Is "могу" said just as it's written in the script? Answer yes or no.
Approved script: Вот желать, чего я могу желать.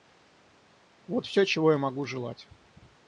yes